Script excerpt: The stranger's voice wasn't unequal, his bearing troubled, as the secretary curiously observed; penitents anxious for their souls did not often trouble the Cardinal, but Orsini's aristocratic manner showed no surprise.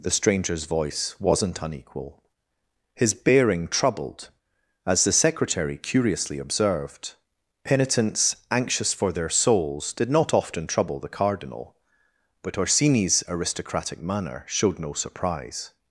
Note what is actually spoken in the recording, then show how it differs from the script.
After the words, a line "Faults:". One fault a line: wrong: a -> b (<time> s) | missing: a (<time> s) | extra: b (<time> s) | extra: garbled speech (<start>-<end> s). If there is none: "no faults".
The stranger's voice wasn't unequal, his bearing troubled, as the secretary curiously observed; penitents anxious for their souls did not often trouble the Cardinal, but Orsini's aristocratic manner showed no surprise.
Faults:
no faults